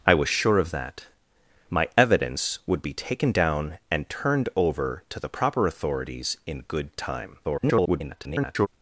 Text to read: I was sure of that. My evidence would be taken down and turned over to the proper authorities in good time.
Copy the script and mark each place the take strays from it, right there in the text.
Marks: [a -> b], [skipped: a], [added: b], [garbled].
I was sure of that. My evidence would be taken down and turned over to the proper authorities in good time. [garbled]